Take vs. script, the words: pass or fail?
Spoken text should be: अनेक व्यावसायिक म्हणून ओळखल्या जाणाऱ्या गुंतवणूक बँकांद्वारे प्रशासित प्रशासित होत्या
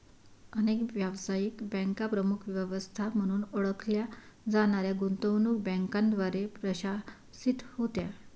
fail